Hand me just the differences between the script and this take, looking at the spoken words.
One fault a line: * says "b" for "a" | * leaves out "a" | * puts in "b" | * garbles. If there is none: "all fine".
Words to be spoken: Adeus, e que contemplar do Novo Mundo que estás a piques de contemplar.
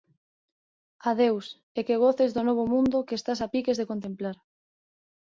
* says "goces" for "contemplar"